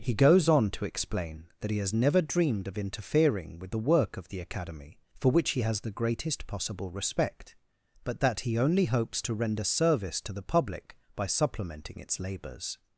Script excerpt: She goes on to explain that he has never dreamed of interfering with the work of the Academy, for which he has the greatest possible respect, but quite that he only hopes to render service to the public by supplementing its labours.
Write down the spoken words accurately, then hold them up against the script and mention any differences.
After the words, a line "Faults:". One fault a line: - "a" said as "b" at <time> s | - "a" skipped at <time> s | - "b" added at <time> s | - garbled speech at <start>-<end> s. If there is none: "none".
He goes on to explain that he has never dreamed of interfering with the work of the Academy, for which he has the greatest possible respect, but that he only hopes to render service to the public by supplementing its labours.
Faults:
- "She" said as "He" at 0.0 s
- "quite" skipped at 8.2 s